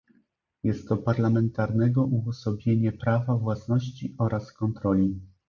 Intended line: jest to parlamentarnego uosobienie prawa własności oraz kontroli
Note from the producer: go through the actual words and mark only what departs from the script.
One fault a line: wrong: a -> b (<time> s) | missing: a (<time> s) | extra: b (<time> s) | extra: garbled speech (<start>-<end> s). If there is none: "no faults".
no faults